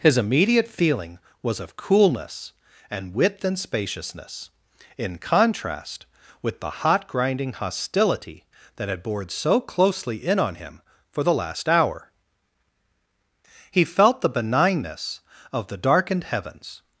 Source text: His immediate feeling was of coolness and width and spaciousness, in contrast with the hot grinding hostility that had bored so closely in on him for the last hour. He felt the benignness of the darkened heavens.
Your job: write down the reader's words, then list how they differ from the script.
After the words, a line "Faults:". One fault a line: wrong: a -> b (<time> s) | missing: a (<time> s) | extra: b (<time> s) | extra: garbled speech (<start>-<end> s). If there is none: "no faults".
His immediate feeling was of coolness and width and spaciousness, in contrast with the hot grinding hostility that had bored so closely in on him for the last hour. He felt the benignness of the darkened heavens.
Faults:
no faults